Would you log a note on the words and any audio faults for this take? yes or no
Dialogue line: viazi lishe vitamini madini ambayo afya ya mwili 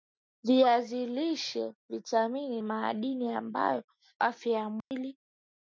yes